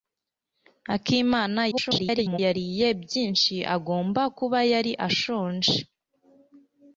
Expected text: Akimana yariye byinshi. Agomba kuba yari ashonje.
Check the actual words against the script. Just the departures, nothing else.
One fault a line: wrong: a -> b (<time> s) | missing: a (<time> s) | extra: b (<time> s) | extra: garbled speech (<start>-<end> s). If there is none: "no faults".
extra: garbled speech (1.7-2.4 s)